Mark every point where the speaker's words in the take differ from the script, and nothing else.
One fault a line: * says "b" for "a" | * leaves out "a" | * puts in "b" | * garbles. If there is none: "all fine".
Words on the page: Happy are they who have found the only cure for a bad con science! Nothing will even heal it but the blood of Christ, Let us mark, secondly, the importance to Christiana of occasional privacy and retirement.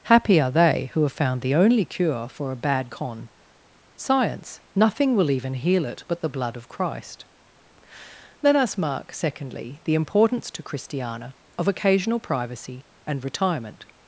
all fine